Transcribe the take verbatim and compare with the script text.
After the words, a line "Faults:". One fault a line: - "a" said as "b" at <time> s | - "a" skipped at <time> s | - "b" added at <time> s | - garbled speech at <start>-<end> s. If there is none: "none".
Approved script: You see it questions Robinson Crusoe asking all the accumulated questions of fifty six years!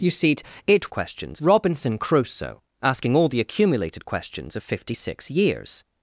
You see it questions Robinson Crusoe asking all the accumulated questions of fifty six years!
Faults:
none